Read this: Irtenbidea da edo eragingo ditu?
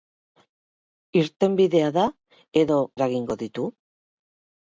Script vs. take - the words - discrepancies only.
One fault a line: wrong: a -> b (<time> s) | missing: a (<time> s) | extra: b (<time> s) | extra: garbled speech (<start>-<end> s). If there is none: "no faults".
no faults